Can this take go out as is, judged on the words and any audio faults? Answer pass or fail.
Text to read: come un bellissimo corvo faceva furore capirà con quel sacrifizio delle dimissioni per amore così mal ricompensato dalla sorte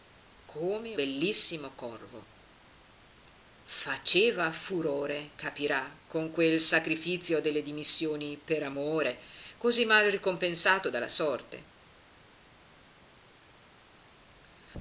fail